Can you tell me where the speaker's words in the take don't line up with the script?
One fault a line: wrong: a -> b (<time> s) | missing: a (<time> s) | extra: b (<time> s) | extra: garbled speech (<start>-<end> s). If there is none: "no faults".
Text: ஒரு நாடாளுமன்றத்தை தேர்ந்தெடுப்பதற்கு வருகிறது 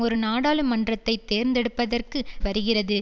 no faults